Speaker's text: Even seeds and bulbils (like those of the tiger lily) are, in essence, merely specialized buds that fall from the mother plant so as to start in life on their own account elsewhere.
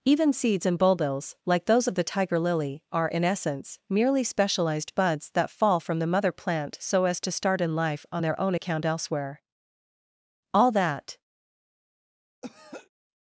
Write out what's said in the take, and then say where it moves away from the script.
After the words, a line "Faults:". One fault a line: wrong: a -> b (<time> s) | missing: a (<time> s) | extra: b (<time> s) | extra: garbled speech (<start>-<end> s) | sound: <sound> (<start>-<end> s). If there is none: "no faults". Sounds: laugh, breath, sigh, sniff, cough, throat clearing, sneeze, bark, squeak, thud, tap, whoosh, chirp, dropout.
Even seeds and bulbils (like those of the tiger lily) are, in essence, merely specialized buds that fall from the mother plant so as to start in life on their own account elsewhere. All that
Faults:
extra: All that (10.5 s)
sound: throat clearing (12.4-12.9 s)